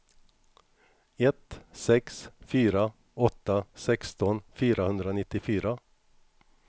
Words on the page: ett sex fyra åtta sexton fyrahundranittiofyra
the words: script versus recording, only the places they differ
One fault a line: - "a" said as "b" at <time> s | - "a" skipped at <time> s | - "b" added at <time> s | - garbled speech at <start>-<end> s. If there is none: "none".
none